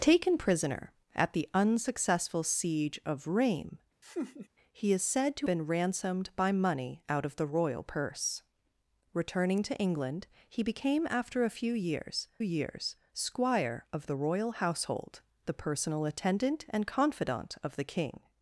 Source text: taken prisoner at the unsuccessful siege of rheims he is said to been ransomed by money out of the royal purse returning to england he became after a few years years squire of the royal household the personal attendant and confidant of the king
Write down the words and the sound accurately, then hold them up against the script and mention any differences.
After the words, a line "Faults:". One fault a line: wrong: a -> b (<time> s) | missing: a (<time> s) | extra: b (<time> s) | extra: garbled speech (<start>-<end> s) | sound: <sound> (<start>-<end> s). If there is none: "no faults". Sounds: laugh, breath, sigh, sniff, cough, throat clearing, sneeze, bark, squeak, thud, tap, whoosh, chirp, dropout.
taken prisoner at the unsuccessful siege of rheims he is said to been ransomed by money out of the royal purse returning to england he became after a few years years squire of the royal household the personal attendant and confidant of the king
Faults:
sound: laugh (4.0-4.5 s)